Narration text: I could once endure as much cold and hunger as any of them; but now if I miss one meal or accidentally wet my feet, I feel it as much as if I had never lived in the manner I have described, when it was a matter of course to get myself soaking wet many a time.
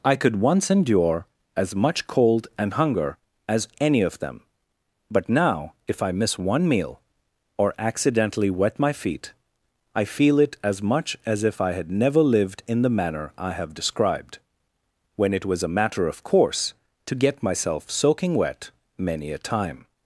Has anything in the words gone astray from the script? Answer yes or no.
no